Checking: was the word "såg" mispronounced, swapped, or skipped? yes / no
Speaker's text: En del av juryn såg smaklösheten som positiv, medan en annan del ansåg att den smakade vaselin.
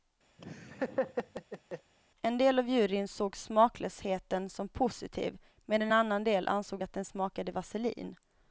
no